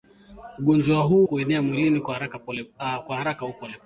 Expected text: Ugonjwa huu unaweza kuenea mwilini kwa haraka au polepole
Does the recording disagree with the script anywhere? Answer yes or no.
yes